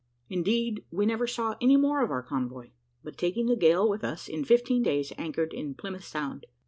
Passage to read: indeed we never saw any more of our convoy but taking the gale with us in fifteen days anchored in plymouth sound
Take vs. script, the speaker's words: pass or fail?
pass